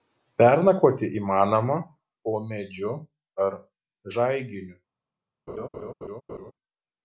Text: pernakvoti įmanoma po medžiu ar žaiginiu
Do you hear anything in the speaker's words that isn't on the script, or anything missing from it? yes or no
no